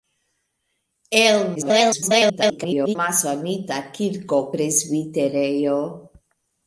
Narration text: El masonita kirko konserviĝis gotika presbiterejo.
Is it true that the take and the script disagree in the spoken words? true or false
true